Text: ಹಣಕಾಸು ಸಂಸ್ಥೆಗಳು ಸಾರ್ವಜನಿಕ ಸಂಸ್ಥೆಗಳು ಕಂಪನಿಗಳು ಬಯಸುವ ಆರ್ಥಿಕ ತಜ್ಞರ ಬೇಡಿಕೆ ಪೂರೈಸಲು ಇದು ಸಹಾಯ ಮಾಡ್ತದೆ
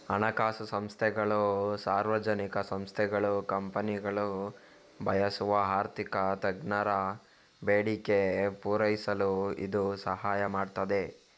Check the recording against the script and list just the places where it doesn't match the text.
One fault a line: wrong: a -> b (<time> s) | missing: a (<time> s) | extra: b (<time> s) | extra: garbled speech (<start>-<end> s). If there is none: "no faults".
no faults